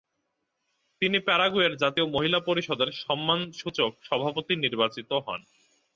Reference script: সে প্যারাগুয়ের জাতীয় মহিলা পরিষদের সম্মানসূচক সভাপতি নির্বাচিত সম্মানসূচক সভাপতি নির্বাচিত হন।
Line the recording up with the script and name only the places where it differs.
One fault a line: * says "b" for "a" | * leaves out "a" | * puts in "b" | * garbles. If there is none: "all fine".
* says "তিনি" for "সে"
* leaves out "সম্মানসূচক সভাপতি নির্বাচিত"